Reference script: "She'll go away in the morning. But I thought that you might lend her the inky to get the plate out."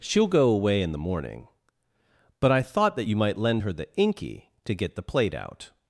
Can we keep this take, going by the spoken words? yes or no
yes